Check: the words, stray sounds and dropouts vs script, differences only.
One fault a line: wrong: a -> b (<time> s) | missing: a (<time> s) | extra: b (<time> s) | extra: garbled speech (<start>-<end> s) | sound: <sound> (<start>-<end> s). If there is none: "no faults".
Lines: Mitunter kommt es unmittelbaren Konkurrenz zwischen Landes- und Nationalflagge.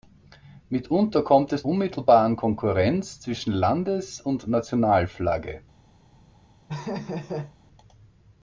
sound: laugh (6.7-7.6 s)